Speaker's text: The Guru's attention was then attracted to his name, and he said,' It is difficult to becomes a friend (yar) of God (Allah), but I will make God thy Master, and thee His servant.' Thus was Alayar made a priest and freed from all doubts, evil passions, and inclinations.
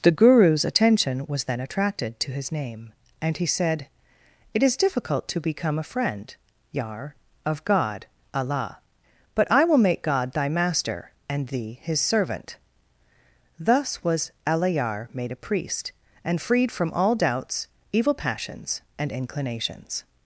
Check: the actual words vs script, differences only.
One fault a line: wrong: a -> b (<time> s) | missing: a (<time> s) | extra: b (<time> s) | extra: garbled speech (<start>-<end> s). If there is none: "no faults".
wrong: becomes -> become (5.4 s)